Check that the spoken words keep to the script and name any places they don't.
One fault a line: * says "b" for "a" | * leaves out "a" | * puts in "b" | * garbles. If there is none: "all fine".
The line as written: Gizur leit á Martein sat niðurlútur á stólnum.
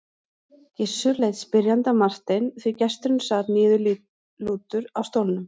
* puts in "spyrjandi"
* puts in "því gesturinn"